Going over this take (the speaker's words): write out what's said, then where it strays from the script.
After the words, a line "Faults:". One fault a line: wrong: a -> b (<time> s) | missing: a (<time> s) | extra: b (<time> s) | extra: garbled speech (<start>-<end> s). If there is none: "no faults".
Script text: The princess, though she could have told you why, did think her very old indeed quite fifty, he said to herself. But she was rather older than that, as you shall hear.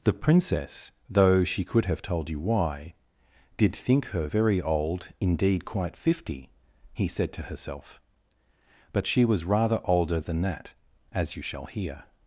The princess, though she could have told you why, did think her very old indeed quite fifty, he said to herself. But she was rather older than that, as you shall hear.
Faults:
no faults